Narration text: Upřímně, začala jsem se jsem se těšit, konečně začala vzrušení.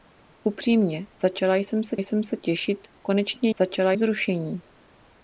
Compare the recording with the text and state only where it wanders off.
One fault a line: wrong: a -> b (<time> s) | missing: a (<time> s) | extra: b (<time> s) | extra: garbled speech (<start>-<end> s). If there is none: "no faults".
no faults